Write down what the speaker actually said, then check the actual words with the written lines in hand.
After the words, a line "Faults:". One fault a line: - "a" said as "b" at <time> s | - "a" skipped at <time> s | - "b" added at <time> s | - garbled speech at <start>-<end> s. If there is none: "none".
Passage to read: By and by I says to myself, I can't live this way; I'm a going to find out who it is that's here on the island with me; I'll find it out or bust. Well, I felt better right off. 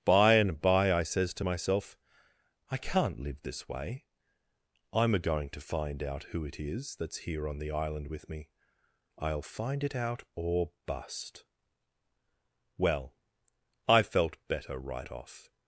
By and by I says to myself, I can't live this way; I'm a going to find out who it is that's here on the island with me; I'll find it out or bust. Well, I felt better right off.
Faults:
none